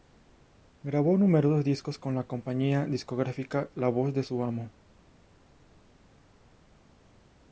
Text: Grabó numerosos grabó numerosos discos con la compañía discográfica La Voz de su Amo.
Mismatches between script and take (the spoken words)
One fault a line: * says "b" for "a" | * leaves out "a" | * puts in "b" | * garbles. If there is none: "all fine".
* leaves out "grabó numerosos"